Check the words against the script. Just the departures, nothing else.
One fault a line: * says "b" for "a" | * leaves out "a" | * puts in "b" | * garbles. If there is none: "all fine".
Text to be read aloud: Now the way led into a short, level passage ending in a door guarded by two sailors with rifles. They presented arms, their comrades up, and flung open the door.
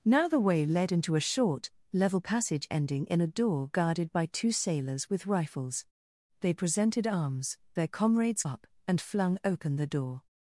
all fine